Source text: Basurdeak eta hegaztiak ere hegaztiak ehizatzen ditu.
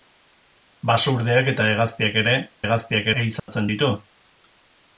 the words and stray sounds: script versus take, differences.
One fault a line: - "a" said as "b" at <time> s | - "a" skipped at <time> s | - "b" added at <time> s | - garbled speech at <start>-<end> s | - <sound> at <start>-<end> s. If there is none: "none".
- dropout at 3.4-3.5 s